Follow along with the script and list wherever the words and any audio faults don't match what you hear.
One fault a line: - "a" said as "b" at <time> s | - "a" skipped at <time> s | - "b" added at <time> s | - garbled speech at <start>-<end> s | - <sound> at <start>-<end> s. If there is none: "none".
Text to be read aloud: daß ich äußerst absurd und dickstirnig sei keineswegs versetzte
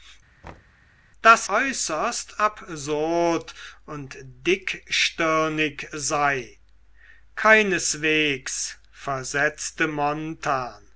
- thud at 0.4-0.8 s
- "ich" skipped at 1.5 s